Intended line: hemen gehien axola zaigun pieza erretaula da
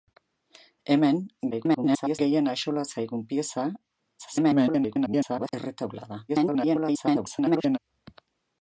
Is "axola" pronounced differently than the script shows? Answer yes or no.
no